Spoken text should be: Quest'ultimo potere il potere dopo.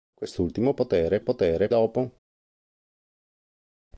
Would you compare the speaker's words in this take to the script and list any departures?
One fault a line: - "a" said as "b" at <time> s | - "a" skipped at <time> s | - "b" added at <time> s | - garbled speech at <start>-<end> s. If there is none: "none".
none